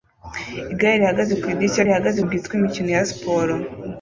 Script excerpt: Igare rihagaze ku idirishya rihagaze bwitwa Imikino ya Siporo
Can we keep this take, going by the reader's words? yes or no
yes